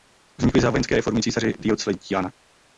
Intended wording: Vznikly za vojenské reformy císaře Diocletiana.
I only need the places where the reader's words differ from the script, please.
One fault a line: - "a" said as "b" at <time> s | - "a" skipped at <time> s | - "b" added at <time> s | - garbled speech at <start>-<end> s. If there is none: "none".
none